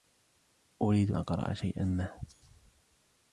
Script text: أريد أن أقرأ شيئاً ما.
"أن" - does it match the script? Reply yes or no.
no